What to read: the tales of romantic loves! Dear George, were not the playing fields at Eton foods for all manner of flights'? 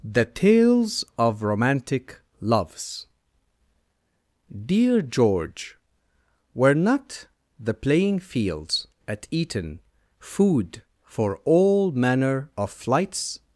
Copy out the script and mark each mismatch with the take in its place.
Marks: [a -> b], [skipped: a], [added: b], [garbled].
the tales of romantic loves! Dear George, were not the playing fields at Eton [foods -> food] for all manner of flights'?